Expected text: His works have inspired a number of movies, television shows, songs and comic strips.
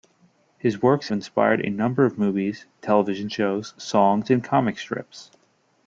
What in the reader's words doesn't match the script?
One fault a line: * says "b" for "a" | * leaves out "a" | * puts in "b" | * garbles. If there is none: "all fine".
* leaves out "have"